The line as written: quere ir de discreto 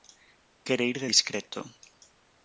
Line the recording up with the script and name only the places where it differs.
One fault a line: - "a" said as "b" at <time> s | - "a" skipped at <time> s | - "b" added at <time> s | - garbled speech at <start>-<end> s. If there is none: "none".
none